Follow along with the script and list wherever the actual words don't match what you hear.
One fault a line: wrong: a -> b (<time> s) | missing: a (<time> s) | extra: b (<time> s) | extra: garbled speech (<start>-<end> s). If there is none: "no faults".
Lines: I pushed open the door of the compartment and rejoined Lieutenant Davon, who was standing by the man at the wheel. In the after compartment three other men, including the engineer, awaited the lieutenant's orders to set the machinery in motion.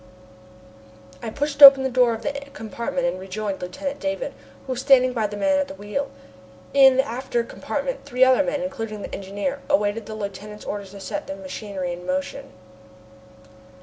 no faults